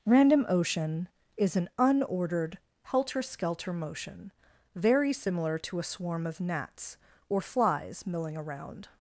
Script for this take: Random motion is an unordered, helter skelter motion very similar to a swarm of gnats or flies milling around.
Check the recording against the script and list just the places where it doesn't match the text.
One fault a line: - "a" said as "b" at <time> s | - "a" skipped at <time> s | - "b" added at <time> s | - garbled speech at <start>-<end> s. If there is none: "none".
- "motion" said as "ocean" at 0.5 s